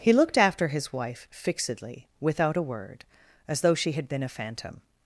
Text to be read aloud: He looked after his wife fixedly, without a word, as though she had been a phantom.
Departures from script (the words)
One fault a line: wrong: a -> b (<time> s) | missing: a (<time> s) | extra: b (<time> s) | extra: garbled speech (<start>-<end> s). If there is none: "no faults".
no faults